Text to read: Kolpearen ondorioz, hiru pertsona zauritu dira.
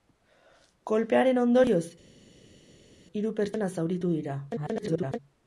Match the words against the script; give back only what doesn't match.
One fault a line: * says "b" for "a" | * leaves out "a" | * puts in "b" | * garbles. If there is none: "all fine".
* garbles